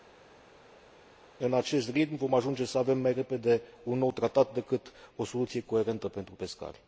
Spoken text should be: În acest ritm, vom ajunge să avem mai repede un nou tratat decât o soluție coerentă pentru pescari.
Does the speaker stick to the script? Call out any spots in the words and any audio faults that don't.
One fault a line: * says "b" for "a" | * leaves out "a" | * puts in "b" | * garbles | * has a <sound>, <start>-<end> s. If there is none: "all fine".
all fine